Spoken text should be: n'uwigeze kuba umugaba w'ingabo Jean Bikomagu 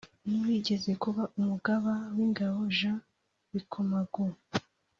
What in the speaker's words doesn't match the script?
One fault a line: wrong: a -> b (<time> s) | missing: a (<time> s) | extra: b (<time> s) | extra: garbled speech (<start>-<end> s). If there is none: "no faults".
no faults